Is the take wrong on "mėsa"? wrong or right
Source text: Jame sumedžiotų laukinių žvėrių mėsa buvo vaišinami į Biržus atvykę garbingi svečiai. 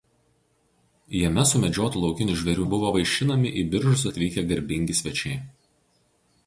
wrong